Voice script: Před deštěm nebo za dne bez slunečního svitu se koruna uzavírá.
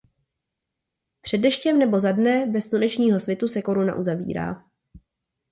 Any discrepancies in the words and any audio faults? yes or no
no